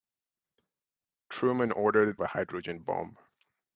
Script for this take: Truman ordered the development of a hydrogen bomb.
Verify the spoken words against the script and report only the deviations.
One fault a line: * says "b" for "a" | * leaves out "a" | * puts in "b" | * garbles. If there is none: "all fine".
* leaves out "the development of"